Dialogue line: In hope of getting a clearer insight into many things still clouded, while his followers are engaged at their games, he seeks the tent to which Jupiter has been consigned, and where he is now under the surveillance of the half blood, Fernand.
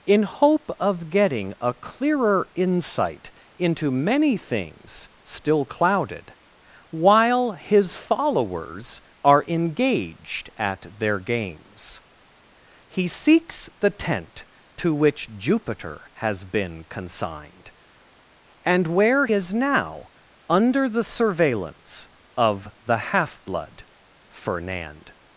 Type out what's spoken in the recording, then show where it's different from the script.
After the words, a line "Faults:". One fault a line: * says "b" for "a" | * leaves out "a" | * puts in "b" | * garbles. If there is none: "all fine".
In hope of getting a clearer insight into many things still clouded, while his followers are engaged at their games, he seeks the tent to which Jupiter has been consigned, and where is now under the surveillance of the half blood, Fernand.
Faults:
* leaves out "he"